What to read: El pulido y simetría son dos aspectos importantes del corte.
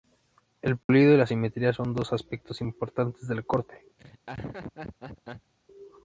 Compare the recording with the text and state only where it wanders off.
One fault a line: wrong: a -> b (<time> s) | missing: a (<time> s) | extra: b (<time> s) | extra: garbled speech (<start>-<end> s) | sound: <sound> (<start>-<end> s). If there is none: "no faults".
sound: dropout (0.8-0.9 s)
extra: la (1.2 s)
sound: laugh (4.0-5.5 s)